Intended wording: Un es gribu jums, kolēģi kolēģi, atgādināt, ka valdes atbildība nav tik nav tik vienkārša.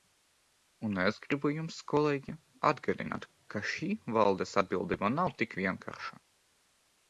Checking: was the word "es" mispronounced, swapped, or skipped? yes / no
no